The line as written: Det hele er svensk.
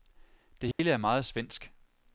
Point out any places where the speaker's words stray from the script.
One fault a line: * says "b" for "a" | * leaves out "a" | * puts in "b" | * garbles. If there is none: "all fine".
* puts in "meget"